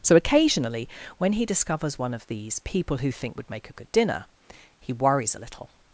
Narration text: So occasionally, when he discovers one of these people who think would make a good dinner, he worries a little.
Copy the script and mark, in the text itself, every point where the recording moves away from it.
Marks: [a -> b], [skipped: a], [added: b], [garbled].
So occasionally, when he discovers one of these people who think would make a good dinner, he worries a little.